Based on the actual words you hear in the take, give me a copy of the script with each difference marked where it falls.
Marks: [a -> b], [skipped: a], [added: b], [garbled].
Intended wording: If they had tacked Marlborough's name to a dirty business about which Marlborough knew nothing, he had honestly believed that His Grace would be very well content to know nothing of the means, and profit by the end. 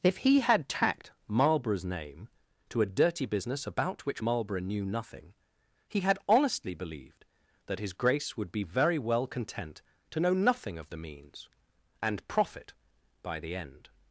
If [they -> he] had tacked Marlborough's name to a dirty business about which Marlborough knew nothing, he had honestly believed that His Grace would be very well content to know nothing of the means, and profit by the end.